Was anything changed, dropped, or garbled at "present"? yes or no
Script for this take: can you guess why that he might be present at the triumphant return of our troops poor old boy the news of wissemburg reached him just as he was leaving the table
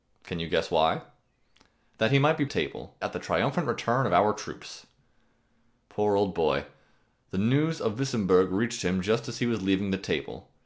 yes